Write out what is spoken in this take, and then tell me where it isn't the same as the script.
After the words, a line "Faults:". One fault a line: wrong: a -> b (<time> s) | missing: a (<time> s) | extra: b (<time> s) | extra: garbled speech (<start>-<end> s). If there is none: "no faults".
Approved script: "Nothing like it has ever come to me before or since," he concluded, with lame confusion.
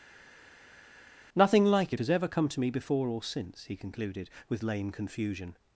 "Nothing like it has ever come to me before or since," he concluded, with lame confusion.
Faults:
no faults